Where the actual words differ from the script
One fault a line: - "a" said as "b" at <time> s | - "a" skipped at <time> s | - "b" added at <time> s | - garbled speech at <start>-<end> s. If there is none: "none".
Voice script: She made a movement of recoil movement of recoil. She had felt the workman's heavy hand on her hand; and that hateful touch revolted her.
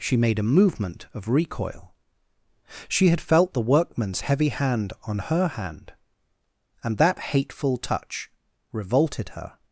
- "movement of recoil" skipped at 1.9 s